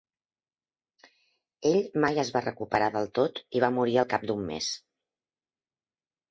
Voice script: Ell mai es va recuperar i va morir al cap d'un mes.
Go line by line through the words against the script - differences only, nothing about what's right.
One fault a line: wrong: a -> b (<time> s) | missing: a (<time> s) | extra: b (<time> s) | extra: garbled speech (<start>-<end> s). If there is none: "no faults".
extra: del tot (3.0 s)